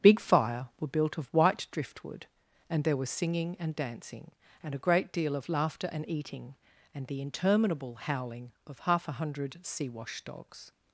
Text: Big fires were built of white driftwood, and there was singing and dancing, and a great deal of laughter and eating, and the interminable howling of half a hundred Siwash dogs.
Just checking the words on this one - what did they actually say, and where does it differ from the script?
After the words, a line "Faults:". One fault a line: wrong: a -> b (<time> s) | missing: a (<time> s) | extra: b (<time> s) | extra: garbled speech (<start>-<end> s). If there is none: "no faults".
Big fire were built of white driftwood, and there was singing and dancing, and a great deal of laughter and eating, and the interminable howling of half a hundred Siwash dogs.
Faults:
wrong: fires -> fire (0.2 s)